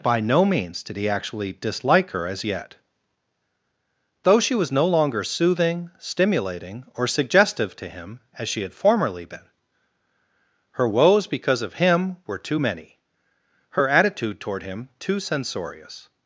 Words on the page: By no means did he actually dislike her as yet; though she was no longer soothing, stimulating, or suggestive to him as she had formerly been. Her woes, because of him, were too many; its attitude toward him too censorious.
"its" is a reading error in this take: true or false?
true